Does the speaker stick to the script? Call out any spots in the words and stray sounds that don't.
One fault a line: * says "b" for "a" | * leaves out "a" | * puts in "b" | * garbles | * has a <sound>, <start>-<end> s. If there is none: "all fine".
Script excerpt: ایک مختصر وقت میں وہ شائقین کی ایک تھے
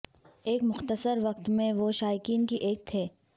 all fine